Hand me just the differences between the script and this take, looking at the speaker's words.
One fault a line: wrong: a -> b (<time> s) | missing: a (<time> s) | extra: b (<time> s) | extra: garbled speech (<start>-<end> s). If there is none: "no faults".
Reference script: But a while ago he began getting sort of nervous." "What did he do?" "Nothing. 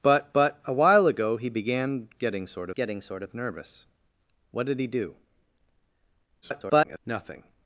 extra: but (0.3 s)
extra: getting sort (2.7 s)
extra: garbled speech (6.4-7.0 s)